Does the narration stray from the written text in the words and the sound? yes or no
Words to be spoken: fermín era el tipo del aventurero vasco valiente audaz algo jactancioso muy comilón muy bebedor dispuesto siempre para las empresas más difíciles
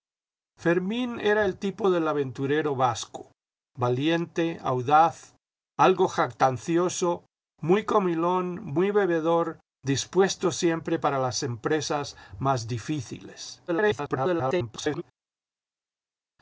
yes